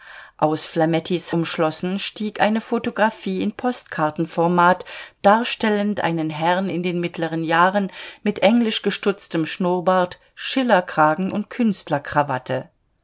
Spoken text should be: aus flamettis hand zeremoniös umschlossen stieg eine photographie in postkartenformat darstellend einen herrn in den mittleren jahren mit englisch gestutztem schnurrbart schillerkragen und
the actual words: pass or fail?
fail